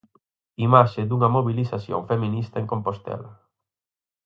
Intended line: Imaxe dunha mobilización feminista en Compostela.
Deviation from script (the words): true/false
false